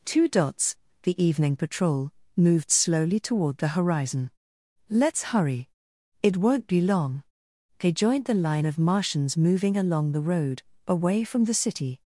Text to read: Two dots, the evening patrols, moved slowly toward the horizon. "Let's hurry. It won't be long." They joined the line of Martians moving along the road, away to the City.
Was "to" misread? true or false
true